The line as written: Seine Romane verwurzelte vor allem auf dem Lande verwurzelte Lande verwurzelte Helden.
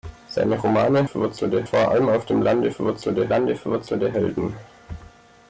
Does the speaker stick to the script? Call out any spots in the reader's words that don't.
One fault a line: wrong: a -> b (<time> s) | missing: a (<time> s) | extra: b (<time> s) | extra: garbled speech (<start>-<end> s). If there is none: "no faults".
no faults